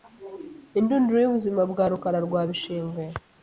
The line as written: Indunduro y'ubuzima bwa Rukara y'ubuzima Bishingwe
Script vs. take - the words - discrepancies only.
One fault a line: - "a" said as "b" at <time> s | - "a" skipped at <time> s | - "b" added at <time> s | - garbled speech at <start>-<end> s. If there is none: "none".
- "y'ubuzima" said as "rwa" at 2.3 s